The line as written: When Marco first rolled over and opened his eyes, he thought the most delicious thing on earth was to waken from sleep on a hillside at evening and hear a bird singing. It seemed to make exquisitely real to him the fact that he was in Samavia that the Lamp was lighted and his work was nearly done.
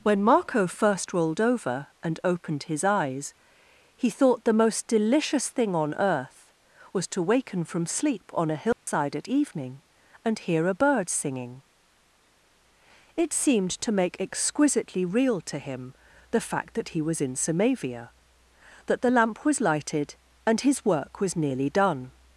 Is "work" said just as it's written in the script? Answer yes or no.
yes